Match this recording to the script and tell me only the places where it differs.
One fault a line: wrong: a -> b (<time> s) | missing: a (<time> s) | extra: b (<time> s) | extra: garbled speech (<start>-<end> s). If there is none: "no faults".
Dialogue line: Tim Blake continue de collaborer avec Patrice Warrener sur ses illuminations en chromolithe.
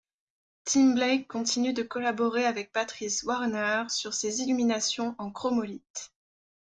no faults